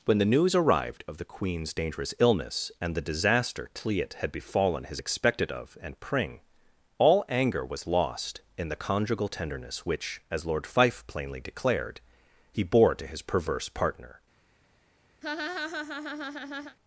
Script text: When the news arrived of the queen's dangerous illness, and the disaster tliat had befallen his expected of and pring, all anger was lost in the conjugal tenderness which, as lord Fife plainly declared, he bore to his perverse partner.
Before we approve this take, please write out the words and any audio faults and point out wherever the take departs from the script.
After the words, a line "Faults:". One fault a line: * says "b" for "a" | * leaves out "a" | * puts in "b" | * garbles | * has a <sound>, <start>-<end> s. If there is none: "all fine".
When the news arrived of the queen's dangerous illness, and the disaster tliat had befallen his expected of and pring, all anger was lost in the conjugal tenderness which, as lord Fife plainly declared, he bore to his perverse partner.
Faults:
* has a laugh, 15.2-16.8 s